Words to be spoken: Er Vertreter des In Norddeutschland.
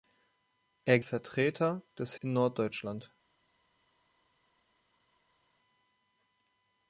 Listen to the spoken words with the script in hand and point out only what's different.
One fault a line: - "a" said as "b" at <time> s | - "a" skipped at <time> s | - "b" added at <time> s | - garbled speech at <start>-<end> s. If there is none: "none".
none